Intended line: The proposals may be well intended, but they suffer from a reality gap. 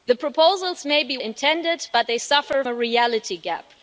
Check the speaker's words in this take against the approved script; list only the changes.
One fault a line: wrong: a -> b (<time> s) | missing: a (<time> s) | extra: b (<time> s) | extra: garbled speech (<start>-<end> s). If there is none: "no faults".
missing: well (1.2 s)
missing: from (2.6 s)